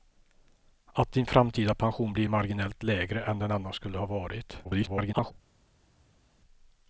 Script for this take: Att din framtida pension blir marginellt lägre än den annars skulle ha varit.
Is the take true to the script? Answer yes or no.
no